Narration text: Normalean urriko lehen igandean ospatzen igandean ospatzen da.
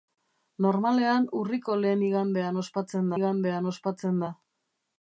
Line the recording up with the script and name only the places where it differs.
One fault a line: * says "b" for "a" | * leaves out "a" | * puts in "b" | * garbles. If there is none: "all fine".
all fine